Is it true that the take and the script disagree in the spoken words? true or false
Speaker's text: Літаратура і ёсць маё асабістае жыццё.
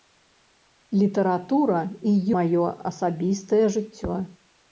true